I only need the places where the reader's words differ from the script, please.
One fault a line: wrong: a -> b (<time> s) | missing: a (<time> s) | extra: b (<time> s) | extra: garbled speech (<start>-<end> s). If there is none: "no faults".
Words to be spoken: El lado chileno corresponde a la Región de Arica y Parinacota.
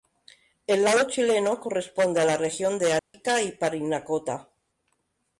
no faults